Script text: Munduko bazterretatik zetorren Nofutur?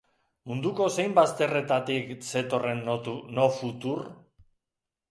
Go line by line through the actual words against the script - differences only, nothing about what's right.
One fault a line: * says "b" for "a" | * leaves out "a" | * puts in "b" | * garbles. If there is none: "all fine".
* puts in "zein"